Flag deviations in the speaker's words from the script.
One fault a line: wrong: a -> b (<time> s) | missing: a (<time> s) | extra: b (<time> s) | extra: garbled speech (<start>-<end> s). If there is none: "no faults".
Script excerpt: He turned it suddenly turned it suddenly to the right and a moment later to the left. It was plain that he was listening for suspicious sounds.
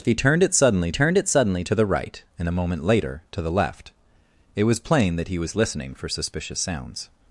no faults